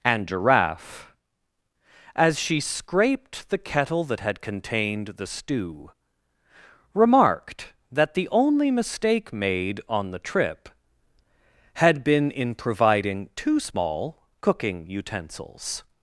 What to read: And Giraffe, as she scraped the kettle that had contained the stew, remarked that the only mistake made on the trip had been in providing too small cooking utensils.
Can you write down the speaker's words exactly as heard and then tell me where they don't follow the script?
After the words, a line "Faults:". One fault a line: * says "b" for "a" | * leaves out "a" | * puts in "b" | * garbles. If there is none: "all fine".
And Giraffe, as she scraped the kettle that had contained the stew, remarked that the only mistake made on the trip had been in providing too small cooking utensils.
Faults:
all fine